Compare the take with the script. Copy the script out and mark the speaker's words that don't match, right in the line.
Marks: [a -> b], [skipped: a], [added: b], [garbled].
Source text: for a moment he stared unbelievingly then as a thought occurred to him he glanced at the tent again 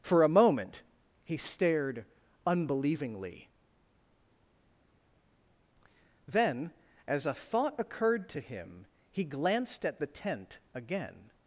for a moment he stared unbelievingly then as a thought occurred to him he glanced at the tent again